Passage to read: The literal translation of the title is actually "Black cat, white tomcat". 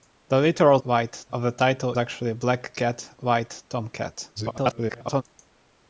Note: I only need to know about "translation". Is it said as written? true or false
false